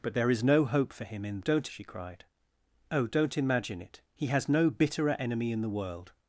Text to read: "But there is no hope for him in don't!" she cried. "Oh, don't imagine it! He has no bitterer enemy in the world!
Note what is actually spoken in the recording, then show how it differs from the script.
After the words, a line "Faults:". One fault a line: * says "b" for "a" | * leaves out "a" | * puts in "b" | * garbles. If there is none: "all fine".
"But there is no hope for him in don't!" she cried. "Oh, don't imagine it! He has no bitterer enemy in the world!
Faults:
all fine